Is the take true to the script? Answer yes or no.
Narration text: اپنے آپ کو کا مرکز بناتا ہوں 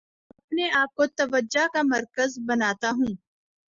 no